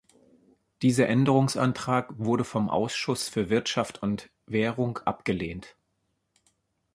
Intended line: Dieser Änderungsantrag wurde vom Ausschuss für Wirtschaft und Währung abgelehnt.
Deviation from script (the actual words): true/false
false